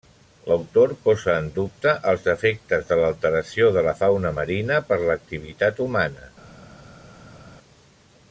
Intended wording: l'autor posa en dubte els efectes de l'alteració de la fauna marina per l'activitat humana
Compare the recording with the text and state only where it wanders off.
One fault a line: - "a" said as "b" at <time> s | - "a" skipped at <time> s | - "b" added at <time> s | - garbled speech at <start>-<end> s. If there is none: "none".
none